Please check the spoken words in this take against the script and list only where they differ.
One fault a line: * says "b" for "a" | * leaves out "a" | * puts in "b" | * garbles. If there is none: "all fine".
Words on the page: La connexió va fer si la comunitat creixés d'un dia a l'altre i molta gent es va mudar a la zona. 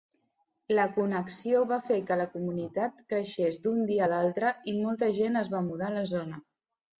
* says "que" for "si"